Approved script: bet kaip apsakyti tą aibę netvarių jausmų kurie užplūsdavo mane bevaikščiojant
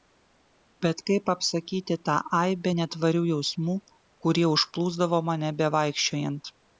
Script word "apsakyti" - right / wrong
right